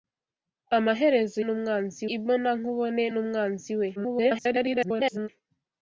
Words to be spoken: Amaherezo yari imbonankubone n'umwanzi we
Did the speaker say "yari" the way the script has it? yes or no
no